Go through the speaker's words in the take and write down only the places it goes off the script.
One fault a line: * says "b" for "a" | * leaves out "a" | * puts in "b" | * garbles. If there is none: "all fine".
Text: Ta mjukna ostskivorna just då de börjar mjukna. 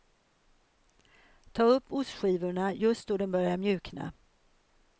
* says "upp" for "mjukna"